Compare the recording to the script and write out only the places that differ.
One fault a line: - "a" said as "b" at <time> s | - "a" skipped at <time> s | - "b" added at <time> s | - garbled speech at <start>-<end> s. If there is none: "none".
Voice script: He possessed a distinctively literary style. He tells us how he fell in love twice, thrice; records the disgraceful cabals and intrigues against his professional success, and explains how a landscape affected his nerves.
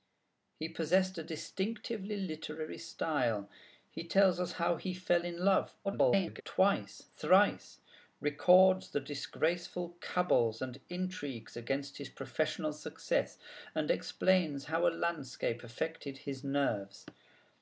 - garbled speech at 5.8-6.4 s